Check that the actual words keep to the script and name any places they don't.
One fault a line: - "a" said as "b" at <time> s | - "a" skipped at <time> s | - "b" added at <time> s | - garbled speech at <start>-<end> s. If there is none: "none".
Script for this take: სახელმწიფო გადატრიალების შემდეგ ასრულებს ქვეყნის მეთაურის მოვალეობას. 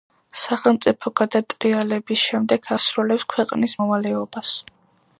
- "მეთაურის" skipped at 3.7 s